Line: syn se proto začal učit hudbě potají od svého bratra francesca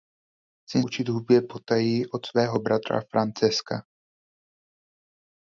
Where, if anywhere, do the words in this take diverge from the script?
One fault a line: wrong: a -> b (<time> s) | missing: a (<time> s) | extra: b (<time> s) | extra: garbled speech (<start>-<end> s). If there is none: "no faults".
missing: se proto začal (0.8 s)